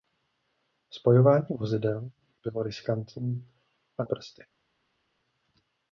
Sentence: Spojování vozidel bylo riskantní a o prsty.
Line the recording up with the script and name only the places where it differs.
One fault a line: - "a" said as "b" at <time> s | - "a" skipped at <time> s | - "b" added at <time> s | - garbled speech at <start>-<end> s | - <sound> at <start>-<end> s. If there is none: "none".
none